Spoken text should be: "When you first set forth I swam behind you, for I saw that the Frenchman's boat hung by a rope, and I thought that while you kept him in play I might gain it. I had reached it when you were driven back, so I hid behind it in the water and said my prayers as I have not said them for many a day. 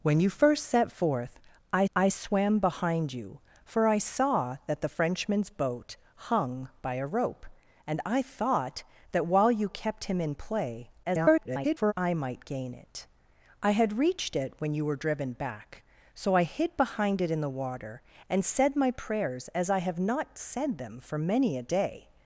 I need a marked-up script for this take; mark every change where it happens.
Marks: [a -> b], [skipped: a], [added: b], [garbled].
"When you first set forth I [added: I] swam behind you, for I saw that the Frenchman's boat hung by a rope, and I thought that while you kept him in play [garbled] I might gain it. I had reached it when you were driven back, so I hid behind it in the water and said my prayers as I have not said them for many a day.